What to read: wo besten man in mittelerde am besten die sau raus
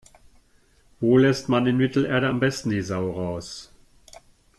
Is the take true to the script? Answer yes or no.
no